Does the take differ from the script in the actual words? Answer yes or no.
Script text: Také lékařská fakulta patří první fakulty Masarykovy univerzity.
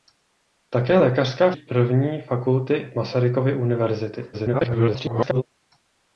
yes